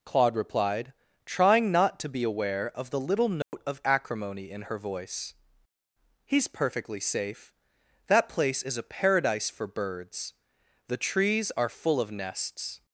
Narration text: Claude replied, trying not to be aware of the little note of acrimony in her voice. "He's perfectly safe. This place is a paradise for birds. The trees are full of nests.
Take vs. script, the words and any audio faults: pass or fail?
fail